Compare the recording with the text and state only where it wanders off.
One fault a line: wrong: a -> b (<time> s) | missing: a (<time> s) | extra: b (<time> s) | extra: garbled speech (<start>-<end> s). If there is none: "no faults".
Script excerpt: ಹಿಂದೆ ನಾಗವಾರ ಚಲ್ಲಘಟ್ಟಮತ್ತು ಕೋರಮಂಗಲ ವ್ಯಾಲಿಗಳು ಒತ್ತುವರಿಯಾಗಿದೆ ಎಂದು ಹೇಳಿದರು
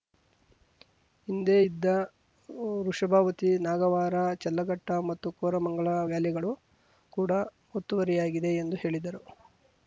extra: ಇದ್ದ ವೃಷಭಾವತಿ (1.6 s)
extra: ಕೂಡ (7.1 s)